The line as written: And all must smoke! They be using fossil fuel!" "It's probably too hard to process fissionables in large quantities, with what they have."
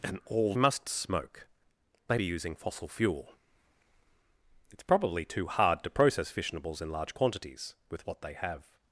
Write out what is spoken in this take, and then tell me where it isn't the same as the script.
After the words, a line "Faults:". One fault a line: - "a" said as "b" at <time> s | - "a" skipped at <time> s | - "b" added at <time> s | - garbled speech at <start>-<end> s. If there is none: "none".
And all must smoke! They be using fossil fuel!" "It's probably too hard to process fissionables in large quantities, with what they have."
Faults:
none